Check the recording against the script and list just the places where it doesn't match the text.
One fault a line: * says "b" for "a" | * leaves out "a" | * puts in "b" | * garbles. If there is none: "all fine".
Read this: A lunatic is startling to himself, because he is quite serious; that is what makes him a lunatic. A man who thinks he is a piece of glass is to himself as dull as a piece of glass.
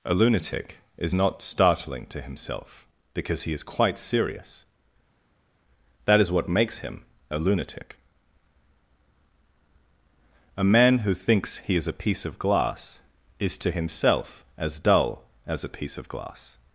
* puts in "not"